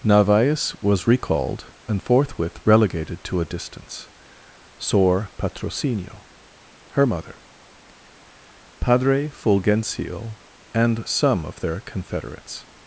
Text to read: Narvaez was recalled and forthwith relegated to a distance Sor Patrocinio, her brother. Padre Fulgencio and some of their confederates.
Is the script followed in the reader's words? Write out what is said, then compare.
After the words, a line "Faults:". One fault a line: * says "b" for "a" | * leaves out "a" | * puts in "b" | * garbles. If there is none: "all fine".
Narvaez was recalled and forthwith relegated to a distance Sor Patrocinio, her mother. Padre Fulgencio and some of their confederates.
Faults:
* says "mother" for "brother"